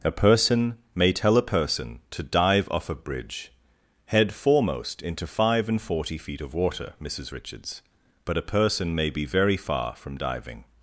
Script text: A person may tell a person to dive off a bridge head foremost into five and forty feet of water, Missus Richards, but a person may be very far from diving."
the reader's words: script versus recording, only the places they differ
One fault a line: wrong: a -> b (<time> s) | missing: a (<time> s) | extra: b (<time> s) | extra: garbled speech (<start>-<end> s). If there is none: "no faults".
no faults